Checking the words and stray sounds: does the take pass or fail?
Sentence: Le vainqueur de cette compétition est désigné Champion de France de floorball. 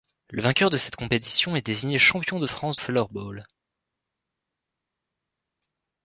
fail